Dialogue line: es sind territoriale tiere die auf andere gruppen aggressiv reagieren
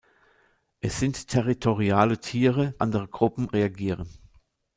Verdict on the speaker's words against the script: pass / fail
fail